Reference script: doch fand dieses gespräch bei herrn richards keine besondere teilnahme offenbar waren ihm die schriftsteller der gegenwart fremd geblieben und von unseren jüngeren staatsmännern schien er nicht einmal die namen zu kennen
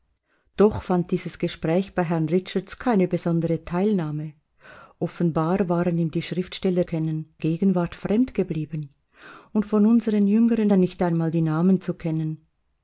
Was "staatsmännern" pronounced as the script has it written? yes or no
no